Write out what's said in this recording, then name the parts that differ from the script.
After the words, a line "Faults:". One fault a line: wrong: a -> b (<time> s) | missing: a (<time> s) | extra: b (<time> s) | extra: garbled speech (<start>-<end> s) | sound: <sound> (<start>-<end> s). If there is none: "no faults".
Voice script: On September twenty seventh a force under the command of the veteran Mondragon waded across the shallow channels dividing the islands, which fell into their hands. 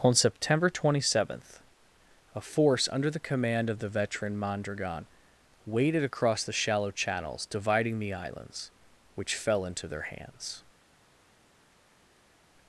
On September twenty seventh a force under the command of the veteran Mondragon waded across the shallow channels dividing the islands, which fell into their hands.
Faults:
no faults